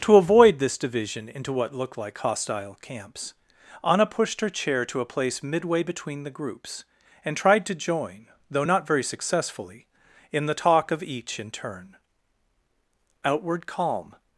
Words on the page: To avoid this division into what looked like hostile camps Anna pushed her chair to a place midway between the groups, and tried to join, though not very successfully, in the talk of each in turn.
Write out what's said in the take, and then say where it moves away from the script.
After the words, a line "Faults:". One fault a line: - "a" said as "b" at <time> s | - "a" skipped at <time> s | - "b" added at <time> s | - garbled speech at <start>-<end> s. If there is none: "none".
To avoid this division into what looked like hostile camps Anna pushed her chair to a place midway between the groups, and tried to join, though not very successfully, in the talk of each in turn. Outward calm
Faults:
- "Outward calm" added at 13.2 s